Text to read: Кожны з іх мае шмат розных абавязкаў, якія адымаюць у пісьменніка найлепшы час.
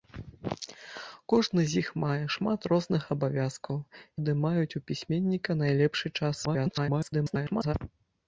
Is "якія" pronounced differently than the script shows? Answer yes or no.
yes